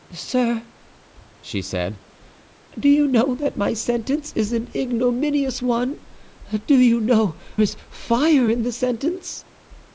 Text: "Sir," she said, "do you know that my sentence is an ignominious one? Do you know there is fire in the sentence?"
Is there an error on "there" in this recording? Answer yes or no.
yes